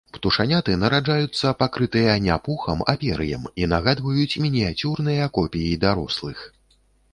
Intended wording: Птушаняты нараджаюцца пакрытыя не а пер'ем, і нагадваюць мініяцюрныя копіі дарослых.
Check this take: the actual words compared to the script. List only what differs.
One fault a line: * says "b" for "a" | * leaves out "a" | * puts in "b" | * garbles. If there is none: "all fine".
* puts in "пухам"